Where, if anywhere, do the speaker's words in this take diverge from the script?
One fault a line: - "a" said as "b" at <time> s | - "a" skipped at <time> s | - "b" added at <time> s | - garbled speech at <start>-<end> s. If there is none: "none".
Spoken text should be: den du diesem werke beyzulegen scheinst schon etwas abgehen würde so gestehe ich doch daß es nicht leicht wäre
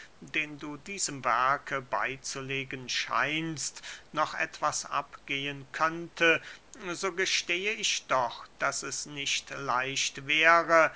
- "schon" said as "noch" at 4.1 s
- "würde" said as "könnte" at 5.7 s